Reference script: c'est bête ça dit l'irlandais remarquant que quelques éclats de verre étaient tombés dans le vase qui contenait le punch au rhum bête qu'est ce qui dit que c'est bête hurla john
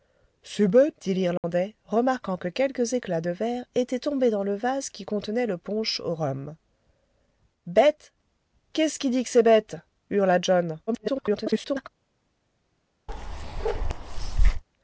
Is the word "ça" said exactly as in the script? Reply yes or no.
no